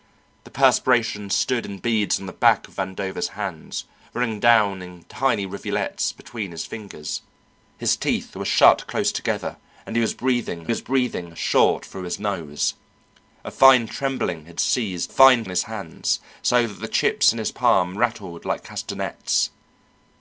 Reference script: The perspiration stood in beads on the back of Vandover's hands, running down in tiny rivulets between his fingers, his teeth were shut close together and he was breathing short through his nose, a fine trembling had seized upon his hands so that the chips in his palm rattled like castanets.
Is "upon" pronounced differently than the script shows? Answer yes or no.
yes